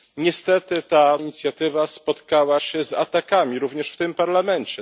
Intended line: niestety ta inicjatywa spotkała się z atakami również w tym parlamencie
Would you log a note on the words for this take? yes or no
no